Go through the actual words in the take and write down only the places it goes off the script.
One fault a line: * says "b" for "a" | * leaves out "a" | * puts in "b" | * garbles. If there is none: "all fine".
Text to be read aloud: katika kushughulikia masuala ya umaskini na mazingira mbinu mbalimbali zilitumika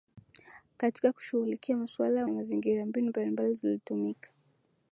* leaves out "umaskini"